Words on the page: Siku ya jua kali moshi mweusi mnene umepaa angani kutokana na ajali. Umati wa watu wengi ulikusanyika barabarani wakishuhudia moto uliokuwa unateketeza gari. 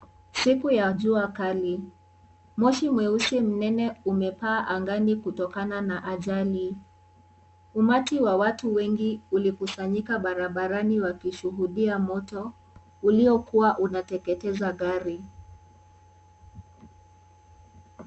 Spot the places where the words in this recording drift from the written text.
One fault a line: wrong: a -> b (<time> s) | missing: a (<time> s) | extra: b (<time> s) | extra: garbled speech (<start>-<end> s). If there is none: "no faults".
no faults